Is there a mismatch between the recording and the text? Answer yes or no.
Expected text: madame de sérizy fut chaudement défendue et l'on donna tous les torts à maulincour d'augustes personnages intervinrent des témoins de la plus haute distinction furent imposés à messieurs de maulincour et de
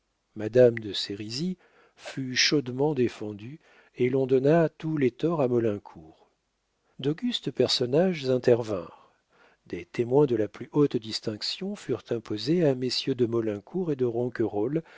no